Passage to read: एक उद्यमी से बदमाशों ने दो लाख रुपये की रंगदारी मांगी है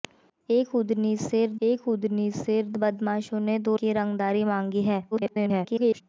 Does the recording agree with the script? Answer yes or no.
no